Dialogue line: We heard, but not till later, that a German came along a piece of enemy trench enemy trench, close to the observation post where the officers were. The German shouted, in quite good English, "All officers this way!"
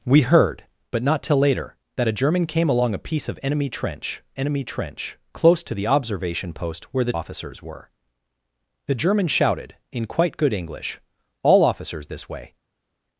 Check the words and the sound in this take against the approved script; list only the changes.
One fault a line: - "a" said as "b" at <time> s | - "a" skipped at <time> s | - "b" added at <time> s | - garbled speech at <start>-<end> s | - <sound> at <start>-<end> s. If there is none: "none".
none